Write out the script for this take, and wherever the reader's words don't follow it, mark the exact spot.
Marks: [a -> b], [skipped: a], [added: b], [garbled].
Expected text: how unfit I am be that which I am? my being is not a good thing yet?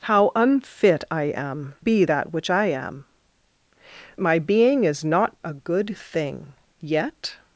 how unfit I am be that which I am? my being is not a good thing yet?